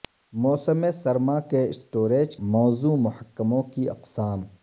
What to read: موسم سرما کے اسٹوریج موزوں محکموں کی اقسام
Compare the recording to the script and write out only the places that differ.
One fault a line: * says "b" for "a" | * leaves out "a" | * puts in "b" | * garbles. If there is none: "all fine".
all fine